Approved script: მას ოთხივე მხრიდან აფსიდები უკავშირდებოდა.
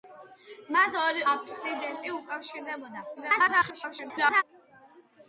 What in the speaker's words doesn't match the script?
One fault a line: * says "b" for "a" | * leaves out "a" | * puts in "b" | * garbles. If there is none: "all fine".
* leaves out "ოთხივე მხრიდან"
* garbles